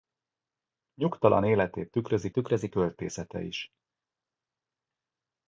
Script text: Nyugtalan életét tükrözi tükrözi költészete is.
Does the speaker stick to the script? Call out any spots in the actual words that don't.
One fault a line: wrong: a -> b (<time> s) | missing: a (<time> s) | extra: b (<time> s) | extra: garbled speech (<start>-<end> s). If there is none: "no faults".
no faults